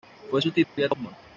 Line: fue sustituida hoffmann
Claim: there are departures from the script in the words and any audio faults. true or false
true